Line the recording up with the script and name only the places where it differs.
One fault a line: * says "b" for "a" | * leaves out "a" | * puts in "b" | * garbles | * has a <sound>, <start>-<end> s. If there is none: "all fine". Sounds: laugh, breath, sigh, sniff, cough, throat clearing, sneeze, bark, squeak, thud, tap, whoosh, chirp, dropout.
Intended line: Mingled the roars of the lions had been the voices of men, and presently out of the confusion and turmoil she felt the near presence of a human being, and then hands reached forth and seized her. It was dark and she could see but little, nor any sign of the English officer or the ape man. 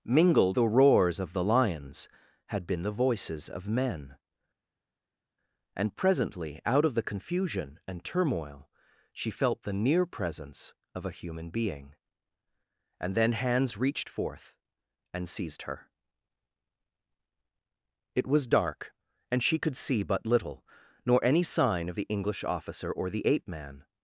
all fine